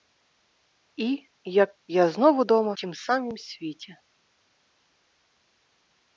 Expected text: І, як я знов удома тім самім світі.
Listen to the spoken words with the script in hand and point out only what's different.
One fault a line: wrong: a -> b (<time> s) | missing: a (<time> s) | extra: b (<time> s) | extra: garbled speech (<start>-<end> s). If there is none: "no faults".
no faults